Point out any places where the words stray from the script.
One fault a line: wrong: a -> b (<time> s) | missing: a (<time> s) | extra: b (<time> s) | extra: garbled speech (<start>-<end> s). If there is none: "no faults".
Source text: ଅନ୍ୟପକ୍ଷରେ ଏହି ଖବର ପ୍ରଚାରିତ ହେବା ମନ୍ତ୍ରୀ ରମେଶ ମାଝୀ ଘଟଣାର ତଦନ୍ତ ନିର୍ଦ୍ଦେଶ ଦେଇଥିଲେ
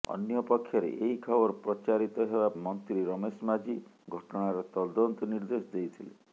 no faults